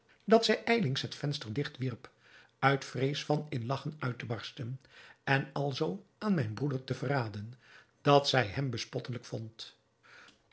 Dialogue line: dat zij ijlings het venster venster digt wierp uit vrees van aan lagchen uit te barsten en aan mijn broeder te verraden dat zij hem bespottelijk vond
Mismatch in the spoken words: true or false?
true